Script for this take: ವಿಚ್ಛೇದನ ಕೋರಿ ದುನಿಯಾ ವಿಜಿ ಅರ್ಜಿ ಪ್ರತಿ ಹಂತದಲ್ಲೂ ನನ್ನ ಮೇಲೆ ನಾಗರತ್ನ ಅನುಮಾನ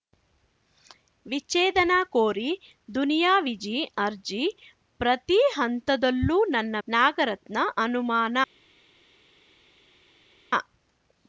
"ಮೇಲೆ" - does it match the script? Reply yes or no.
no